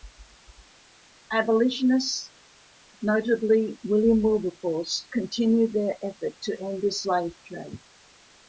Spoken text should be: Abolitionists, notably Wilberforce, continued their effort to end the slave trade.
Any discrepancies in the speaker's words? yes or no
yes